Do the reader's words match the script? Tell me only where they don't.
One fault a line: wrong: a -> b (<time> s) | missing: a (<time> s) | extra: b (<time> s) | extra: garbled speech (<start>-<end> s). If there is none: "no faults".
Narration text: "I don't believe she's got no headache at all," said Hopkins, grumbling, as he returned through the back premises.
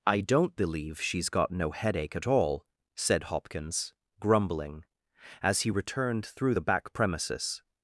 no faults